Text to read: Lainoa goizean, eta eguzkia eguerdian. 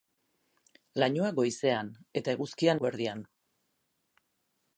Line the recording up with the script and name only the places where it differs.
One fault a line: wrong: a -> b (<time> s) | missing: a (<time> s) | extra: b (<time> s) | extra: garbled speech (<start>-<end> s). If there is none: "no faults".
no faults